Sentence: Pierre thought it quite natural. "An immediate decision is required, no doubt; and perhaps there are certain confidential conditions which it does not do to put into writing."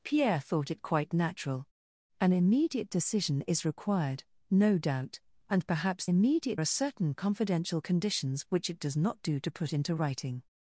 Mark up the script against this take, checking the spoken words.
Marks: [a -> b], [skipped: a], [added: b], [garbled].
Pierre thought it quite natural. "An immediate decision is required, no doubt; and perhaps [there -> immediate] are certain confidential conditions which it does not do to put into writing."